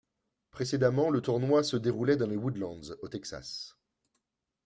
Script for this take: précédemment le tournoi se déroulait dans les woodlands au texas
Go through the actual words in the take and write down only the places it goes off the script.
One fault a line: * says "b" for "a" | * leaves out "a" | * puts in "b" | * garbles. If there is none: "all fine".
all fine